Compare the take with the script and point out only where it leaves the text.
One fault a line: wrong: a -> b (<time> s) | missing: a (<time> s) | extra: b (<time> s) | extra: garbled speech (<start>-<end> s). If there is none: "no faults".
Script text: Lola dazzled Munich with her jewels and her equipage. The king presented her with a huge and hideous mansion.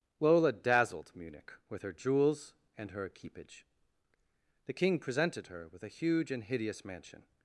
no faults